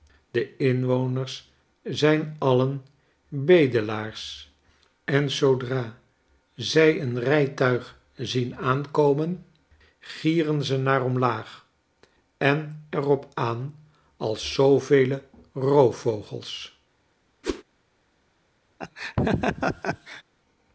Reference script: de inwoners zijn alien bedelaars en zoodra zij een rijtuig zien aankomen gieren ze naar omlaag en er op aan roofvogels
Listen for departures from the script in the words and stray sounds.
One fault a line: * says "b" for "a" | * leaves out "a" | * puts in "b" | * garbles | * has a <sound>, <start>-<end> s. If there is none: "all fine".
* puts in "als zoovele"
* has a whoosh, 17.4-17.6 s
* has a laugh, 18.8-20.2 s